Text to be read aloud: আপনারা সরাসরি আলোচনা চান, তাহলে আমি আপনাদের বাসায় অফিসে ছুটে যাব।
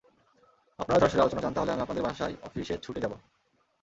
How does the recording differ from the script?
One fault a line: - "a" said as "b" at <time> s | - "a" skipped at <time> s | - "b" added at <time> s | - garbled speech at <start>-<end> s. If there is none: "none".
none